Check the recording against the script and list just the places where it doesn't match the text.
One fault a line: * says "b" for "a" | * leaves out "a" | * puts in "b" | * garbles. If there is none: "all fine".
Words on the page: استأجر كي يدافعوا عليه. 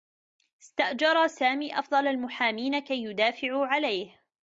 * puts in "سامي أفضل المحامين"